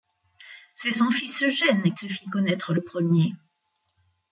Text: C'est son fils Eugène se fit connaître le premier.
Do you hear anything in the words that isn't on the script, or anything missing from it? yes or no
no